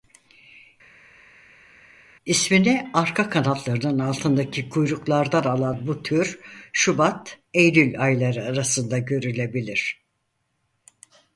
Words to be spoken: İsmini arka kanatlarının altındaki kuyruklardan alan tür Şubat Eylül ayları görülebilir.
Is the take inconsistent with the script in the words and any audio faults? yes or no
yes